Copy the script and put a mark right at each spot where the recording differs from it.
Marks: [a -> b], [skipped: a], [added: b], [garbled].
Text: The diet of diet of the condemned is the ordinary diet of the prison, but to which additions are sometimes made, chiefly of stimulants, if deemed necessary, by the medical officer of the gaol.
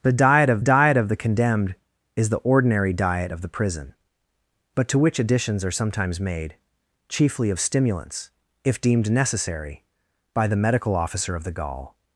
The diet of diet of the condemned is the ordinary diet of the prison, but to which additions are sometimes made, chiefly of stimulants, if deemed necessary, by the medical officer of the gaol.